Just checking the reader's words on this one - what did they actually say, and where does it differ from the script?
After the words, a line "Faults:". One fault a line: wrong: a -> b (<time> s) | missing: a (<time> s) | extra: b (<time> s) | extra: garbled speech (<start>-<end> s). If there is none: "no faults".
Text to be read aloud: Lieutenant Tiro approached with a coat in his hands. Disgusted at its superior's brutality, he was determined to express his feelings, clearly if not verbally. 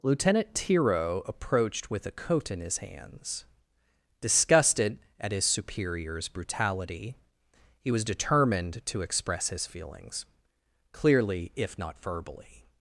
Lieutenant Tiro approached with a coat in his hands. Disgusted at his superior's brutality, he was determined to express his feelings, clearly if not verbally.
Faults:
wrong: its -> his (5.3 s)